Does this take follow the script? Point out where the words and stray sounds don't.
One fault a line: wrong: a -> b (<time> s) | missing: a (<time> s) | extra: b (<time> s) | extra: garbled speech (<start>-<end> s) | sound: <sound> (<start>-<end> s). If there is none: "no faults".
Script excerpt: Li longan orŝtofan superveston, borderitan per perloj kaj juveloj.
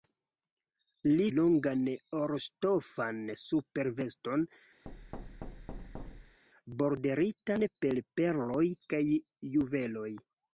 sound: thud (4.9-6.4 s)